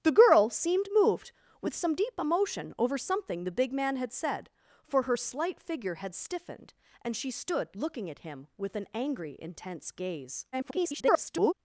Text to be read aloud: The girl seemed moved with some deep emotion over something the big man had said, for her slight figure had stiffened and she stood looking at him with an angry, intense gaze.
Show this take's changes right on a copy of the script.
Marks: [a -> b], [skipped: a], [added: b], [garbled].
The girl seemed moved with some deep emotion over something the big man had said, for her slight figure had stiffened and she stood looking at him with an angry, intense gaze. [garbled]